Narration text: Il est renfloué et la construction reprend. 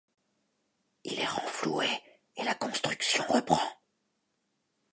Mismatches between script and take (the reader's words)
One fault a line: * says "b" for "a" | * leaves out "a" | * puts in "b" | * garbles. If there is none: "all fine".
all fine